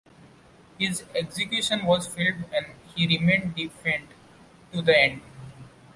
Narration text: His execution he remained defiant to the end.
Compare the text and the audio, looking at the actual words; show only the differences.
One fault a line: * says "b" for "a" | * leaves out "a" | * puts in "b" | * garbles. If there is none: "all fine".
* puts in "was filmed and"